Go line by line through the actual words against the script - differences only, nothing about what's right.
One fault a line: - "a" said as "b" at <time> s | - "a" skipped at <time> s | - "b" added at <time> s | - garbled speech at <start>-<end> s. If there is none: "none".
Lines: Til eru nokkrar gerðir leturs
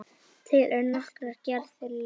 none